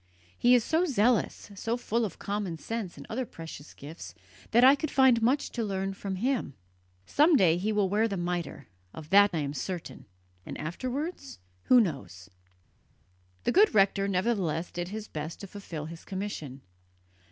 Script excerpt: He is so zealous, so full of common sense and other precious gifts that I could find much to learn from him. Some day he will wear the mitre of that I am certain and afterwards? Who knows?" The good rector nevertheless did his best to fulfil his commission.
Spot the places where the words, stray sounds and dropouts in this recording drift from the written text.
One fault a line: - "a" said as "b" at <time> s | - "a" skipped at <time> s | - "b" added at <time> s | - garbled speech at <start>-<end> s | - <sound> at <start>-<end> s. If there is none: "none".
none